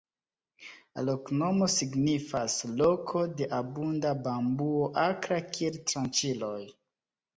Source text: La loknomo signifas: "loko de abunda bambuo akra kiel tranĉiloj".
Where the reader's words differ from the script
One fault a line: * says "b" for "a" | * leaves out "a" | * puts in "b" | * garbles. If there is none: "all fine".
all fine